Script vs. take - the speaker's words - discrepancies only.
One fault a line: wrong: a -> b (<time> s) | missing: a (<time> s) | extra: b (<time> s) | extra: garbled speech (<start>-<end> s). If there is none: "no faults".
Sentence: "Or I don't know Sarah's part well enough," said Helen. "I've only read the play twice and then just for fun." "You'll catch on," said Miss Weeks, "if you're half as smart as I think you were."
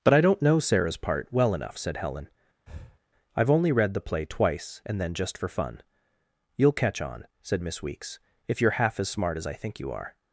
wrong: Or -> But (0.0 s)
wrong: were -> are (9.9 s)